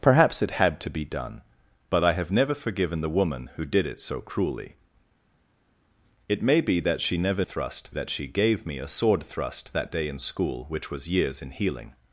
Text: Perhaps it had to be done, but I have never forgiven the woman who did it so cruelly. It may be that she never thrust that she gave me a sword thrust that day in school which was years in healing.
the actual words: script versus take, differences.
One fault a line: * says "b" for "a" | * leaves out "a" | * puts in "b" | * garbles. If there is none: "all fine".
all fine